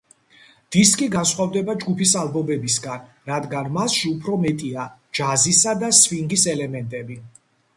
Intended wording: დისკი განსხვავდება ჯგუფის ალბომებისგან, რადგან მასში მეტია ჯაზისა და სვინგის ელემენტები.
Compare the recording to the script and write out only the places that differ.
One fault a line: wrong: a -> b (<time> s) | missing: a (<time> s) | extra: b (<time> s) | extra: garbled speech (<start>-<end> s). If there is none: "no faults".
extra: უფრო (4.2 s)